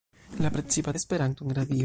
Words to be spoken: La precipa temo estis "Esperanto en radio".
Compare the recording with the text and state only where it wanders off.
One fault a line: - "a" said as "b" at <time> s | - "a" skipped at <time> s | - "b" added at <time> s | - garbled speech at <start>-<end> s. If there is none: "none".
- "temo estis" skipped at 0.9 s